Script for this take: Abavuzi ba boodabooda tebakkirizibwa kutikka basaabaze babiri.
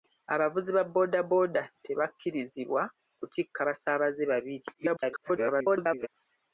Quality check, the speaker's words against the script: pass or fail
fail